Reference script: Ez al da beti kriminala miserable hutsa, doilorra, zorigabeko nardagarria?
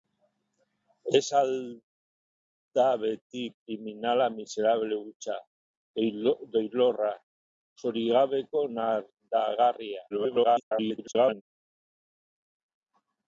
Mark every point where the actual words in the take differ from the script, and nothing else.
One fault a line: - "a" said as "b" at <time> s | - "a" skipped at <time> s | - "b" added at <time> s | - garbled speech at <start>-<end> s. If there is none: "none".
- garbled speech at 10.1-11.4 s